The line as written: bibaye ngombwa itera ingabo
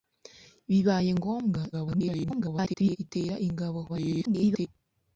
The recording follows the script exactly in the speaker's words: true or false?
false